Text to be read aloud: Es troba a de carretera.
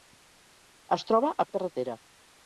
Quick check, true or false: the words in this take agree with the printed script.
true